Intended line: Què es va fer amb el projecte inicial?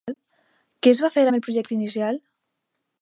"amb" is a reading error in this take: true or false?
false